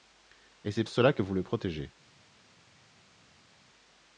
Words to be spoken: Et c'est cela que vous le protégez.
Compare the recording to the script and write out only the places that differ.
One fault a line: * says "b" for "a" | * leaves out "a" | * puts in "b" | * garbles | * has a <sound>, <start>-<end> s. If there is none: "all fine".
all fine